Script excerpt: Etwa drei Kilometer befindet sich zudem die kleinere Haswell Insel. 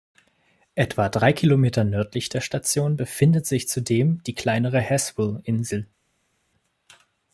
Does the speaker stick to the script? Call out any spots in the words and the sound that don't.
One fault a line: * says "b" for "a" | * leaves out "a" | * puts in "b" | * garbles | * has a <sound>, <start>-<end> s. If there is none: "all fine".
* puts in "nördlich der Station"